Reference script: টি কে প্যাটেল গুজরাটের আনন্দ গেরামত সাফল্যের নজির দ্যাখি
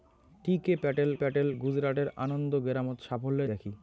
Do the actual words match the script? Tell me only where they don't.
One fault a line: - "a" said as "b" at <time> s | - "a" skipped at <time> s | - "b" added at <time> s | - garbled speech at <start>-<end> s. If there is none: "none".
- "প্যাটেল" added at 1.1 s
- "নজির" skipped at 3.5 s